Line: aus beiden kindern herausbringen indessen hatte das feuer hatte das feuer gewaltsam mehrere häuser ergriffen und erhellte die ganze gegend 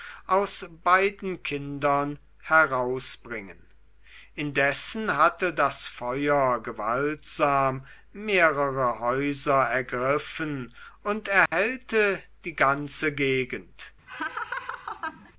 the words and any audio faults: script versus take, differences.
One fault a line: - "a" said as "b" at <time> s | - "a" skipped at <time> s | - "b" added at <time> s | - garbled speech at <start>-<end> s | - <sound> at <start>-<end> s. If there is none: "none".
- "hatte das feuer" skipped at 6.6 s
- dropout at 11.5-11.5 s
- laugh at 14.1-15.3 s